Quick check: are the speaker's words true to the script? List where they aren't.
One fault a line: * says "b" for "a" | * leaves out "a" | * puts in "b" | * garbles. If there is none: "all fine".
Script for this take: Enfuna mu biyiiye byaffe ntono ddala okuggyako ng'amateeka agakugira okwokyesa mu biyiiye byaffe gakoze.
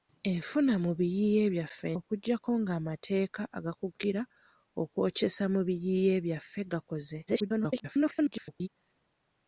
* leaves out "ntono ddala"
* garbles